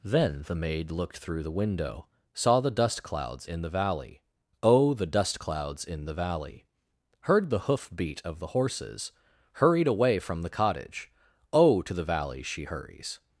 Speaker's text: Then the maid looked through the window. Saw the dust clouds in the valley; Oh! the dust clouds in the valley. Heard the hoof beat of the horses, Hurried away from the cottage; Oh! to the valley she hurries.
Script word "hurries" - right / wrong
right